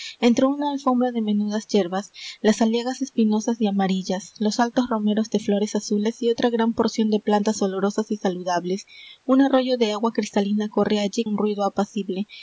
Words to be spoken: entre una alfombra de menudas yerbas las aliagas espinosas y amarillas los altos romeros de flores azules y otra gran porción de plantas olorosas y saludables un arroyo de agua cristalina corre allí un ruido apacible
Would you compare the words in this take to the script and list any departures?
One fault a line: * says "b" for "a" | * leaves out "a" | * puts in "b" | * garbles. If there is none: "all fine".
all fine